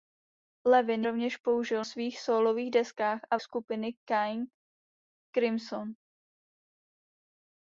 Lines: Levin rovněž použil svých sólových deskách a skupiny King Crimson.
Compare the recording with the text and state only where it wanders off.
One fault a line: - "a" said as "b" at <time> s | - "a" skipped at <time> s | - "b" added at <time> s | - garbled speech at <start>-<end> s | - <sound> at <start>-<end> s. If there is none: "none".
none